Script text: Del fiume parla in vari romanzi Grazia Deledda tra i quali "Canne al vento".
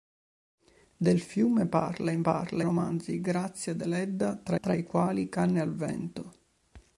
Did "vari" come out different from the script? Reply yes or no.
yes